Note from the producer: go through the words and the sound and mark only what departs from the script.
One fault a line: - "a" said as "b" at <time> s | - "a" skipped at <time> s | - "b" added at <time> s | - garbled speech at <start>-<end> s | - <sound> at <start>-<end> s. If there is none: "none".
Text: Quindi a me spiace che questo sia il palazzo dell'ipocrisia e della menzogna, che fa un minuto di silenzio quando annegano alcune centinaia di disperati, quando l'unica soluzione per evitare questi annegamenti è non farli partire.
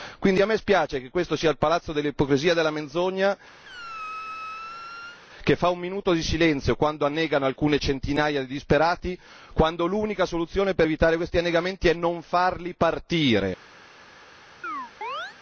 - squeak at 3.6-5.2 s
- chirp at 14.6-15.4 s